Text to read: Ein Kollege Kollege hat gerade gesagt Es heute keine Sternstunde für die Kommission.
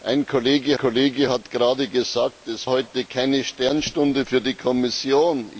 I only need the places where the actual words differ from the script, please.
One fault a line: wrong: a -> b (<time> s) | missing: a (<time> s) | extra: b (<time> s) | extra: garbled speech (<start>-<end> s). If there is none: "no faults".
no faults